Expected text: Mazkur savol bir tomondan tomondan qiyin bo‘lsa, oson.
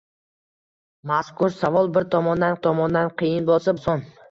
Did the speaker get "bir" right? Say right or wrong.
right